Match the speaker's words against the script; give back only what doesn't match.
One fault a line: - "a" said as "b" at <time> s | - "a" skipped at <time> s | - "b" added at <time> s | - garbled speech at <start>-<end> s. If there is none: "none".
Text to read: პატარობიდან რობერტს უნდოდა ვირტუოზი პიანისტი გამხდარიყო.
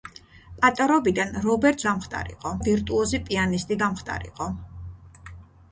- "უნდოდა" said as "გამხდარიყო" at 1.9 s